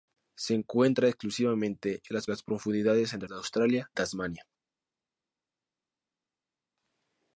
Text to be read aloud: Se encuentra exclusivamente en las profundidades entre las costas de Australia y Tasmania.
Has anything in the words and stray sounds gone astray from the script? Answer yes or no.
yes